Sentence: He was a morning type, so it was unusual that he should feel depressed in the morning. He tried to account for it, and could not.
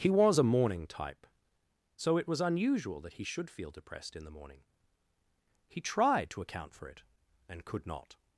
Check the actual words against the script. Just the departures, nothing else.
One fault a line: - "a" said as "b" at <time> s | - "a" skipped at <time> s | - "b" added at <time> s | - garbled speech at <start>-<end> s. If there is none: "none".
none